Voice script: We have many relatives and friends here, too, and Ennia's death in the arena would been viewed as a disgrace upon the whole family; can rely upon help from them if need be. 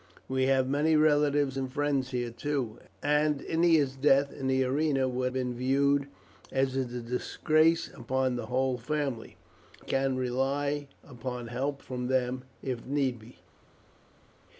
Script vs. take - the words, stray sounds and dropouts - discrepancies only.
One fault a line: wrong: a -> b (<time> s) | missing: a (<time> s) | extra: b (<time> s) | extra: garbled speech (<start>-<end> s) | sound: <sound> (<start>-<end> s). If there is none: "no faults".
no faults